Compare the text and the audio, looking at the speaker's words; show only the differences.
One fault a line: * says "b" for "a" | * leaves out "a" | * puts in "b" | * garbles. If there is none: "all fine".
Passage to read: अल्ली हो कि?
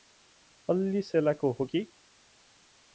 * puts in "सेलाको"